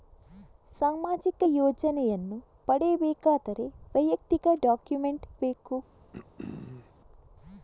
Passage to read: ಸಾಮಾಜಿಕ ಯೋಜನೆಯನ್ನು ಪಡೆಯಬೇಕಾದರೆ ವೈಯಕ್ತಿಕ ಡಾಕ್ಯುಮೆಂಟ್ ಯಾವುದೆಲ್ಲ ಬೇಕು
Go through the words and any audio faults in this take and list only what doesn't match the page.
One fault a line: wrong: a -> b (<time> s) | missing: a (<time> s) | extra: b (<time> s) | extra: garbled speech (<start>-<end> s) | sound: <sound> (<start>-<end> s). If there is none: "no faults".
missing: ಯಾವುದೆಲ್ಲ (5.2 s)
sound: throat clearing (6.1-6.9 s)